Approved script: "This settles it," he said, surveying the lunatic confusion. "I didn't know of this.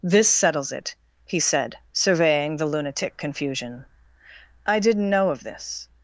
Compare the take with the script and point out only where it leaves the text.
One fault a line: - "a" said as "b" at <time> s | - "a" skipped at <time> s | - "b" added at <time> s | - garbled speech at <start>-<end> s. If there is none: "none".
none